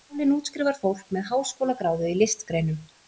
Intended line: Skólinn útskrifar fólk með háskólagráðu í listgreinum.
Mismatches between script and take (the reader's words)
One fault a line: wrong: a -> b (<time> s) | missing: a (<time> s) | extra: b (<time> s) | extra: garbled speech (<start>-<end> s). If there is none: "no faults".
no faults